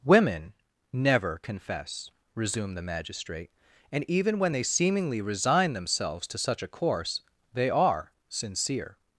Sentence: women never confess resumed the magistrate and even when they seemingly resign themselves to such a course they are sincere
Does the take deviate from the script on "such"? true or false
false